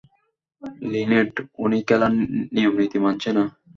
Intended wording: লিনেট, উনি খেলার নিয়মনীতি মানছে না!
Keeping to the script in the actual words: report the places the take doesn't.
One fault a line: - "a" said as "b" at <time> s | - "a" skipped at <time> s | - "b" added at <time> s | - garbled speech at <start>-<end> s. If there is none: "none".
none